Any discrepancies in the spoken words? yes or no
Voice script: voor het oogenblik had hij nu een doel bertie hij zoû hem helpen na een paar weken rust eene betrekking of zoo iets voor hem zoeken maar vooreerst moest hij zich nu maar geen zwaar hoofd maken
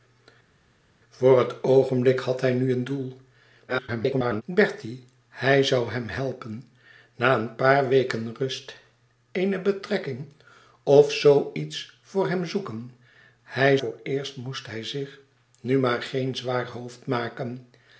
yes